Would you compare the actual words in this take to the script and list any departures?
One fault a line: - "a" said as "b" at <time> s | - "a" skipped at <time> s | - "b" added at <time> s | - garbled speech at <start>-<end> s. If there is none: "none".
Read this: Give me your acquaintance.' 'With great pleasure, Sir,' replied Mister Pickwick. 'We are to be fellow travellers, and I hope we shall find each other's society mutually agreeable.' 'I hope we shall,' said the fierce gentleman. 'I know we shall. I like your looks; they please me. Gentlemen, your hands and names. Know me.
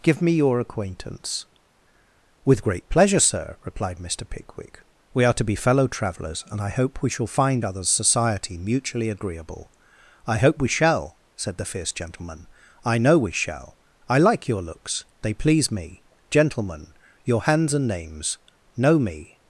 - "each" skipped at 7.6 s